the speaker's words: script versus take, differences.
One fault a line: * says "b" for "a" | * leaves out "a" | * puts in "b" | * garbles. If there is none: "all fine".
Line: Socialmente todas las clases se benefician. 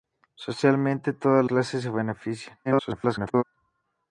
* leaves out "las"
* garbles